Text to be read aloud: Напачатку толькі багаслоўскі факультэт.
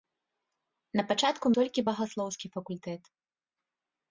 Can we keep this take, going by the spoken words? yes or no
yes